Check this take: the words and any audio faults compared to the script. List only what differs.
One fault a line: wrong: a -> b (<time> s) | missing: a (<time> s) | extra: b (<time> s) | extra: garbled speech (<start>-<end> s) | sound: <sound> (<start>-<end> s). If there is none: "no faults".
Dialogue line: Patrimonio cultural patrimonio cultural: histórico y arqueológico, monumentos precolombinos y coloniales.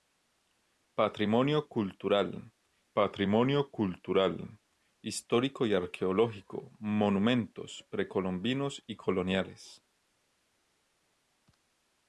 no faults